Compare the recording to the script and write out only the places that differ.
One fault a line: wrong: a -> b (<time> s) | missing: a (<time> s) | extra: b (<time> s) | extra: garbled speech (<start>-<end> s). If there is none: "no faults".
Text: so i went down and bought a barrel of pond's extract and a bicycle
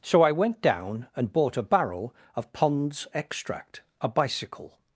missing: and (3.8 s)